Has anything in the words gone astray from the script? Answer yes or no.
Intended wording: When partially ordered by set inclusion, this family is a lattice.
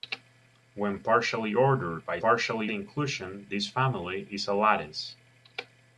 yes